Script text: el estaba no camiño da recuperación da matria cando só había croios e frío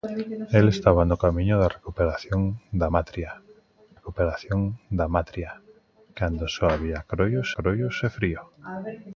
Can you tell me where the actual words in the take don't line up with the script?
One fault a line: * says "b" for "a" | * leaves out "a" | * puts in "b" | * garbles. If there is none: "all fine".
* puts in "recuperación da matria"
* puts in "croios"